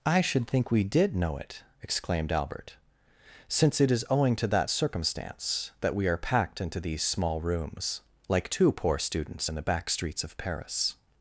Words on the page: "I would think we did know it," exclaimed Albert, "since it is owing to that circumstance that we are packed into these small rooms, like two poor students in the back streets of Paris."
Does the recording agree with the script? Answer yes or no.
no